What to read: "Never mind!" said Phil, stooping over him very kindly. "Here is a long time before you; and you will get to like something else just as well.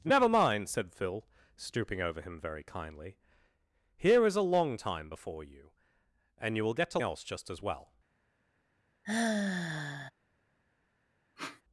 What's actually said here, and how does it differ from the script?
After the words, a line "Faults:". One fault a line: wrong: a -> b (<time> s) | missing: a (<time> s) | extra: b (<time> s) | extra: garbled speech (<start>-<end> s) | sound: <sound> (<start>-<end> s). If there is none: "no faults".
"Never mind!" said Phil, stooping over him very kindly. "Here is a long time before you; and you will get to else just as well.
Faults:
missing: like something (7.0 s)
sound: sigh (9.0-10.1 s)
sound: sniff (11.4-11.6 s)